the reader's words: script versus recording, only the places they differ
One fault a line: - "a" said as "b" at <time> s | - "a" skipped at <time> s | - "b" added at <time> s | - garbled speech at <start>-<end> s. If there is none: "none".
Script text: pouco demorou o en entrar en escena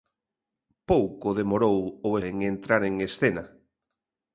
none